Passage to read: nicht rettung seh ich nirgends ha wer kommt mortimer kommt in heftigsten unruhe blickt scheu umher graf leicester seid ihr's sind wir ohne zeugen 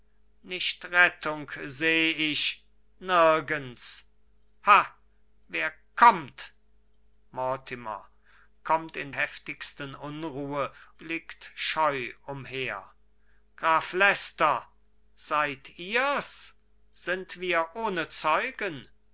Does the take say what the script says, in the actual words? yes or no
yes